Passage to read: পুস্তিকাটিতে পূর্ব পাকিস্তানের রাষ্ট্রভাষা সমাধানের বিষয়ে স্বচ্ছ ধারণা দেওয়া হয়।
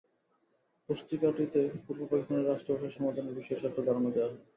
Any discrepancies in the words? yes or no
no